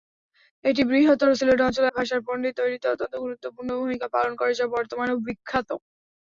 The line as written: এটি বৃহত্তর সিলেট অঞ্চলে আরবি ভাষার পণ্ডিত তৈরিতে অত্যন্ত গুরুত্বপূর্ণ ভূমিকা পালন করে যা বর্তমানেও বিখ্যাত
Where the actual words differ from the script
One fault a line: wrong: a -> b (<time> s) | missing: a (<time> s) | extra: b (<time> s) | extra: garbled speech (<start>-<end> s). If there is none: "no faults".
missing: আরবি (1.9 s)